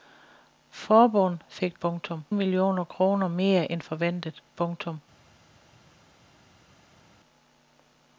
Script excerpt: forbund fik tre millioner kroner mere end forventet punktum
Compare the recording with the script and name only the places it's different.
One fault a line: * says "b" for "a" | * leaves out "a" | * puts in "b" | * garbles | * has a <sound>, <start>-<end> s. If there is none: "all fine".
* says "punktum" for "tre"